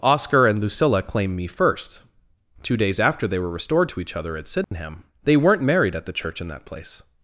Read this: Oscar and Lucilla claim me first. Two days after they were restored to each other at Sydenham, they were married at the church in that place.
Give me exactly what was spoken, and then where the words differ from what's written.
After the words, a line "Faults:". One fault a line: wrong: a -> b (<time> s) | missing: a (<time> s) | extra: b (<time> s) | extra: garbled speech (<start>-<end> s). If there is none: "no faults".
Oscar and Lucilla claim me first. Two days after they were restored to each other at Sydenham, they weren't married at the church in that place.
Faults:
wrong: were -> weren't (5.4 s)